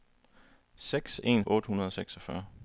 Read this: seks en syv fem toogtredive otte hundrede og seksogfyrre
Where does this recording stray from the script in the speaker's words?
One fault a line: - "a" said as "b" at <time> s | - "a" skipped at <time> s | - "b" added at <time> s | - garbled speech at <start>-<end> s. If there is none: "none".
- "syv fem toogtredive" skipped at 1.4 s